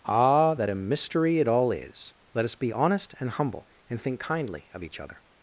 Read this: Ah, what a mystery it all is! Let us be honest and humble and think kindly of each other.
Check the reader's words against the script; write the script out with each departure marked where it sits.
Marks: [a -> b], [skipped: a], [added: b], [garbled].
Ah, [what -> that] a mystery it all is! Let us be honest and humble and think kindly of each other.